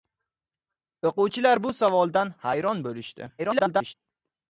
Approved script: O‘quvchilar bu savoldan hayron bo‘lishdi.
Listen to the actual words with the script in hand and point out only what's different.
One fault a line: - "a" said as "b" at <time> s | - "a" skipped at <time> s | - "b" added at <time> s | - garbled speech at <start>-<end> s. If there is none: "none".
- garbled speech at 3.4-3.9 s